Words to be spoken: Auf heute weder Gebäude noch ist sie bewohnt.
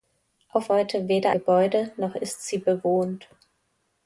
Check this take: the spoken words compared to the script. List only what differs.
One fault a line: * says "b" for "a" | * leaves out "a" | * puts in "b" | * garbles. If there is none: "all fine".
all fine